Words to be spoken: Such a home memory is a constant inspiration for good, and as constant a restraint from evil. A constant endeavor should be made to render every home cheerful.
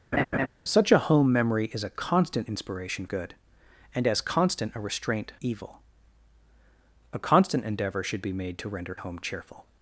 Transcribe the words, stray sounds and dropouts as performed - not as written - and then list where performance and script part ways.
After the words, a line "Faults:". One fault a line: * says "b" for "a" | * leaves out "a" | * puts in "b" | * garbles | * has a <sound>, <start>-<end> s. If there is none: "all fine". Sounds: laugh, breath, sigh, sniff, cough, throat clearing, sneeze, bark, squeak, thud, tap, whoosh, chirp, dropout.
Such a home memory is a constant inspiration good, and as constant a restraint evil. A constant endeavor should be made to render home cheerful.
Faults:
* has a laugh, 0.1-0.5 s
* leaves out "for"
* leaves out "from"
* leaves out "every"